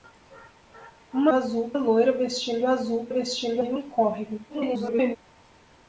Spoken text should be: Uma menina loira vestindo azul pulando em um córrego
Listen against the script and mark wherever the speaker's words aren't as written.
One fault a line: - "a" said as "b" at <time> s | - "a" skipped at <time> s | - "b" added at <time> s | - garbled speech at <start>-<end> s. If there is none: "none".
- "menina" said as "azul" at 1.3 s
- "pulando" said as "vestindo" at 3.1 s
- garbled speech at 4.5-5.2 s